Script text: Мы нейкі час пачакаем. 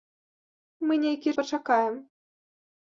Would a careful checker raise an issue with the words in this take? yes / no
yes